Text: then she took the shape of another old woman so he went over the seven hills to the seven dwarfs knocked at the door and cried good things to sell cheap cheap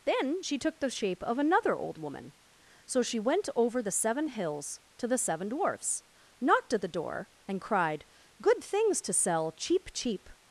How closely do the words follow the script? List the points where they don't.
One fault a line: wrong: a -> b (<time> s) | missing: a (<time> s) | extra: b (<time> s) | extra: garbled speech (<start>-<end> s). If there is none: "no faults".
wrong: he -> she (3.0 s)